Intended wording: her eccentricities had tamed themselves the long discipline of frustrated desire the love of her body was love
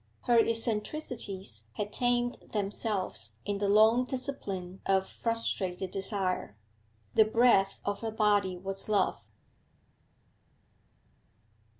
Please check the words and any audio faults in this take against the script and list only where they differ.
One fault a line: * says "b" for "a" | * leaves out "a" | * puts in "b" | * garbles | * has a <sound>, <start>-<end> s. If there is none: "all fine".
* puts in "in"
* says "breath" for "love"